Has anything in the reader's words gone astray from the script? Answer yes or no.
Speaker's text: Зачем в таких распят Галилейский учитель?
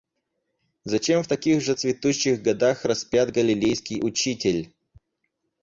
yes